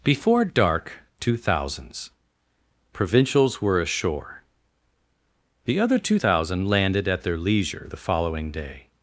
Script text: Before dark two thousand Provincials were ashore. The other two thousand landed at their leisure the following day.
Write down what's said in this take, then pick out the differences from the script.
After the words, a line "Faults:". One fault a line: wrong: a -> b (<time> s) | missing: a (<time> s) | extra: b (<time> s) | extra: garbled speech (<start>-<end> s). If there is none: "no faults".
Before dark two thousands Provincials were ashore. The other two thousand landed at their leisure the following day.
Faults:
wrong: thousand -> thousands (1.4 s)